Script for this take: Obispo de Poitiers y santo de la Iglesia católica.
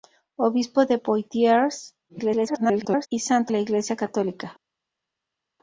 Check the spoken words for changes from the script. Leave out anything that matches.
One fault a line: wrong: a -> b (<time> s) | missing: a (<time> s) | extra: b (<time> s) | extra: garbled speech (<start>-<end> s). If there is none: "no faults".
extra: garbled speech (2.1-3.1 s)
missing: de (3.5 s)